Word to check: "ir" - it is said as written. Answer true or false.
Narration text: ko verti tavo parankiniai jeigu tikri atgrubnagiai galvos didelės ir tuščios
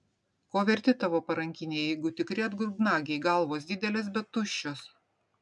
false